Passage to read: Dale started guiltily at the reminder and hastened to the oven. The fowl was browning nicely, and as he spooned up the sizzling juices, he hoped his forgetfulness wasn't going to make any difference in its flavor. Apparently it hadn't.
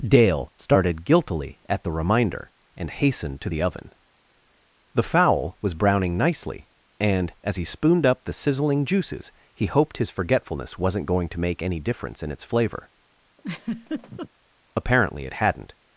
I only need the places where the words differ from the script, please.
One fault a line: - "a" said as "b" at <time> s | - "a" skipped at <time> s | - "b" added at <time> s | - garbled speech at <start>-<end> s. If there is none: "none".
none